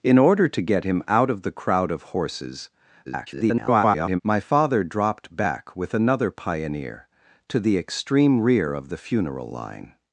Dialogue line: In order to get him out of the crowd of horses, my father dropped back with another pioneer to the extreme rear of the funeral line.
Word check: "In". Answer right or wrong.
right